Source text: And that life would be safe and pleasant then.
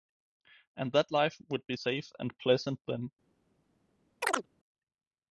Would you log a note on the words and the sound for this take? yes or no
yes